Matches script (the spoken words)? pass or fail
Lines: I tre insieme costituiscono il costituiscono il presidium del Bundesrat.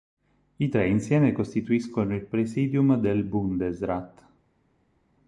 fail